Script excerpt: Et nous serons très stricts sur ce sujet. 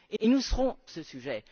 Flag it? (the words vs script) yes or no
yes